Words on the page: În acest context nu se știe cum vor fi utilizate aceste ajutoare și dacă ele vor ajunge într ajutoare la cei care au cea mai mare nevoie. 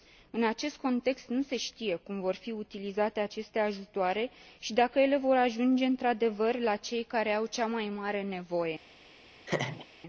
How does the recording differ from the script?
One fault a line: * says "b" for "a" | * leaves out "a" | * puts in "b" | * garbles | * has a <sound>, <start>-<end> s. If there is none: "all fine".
* says "adevăr" for "ajutoare"
* has a laugh, 9.5-9.9 s